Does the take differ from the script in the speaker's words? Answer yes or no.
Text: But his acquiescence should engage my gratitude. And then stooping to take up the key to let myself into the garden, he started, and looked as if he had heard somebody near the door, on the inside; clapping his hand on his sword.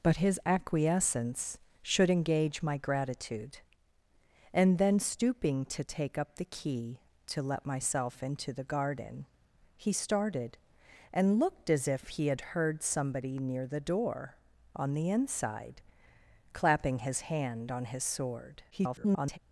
yes